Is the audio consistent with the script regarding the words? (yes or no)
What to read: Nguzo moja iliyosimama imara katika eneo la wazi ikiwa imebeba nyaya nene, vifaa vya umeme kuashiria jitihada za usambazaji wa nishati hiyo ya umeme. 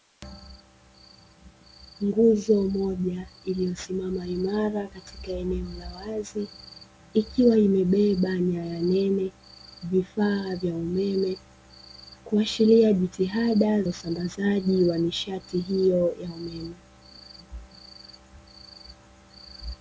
no